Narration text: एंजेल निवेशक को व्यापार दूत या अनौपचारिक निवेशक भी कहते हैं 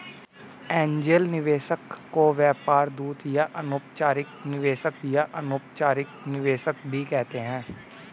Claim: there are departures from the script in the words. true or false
true